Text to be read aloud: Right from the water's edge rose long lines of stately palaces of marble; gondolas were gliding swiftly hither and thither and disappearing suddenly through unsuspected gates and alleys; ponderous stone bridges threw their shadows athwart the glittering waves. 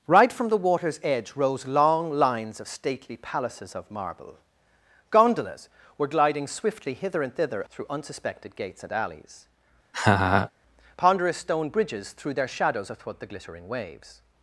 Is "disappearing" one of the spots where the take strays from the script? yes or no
yes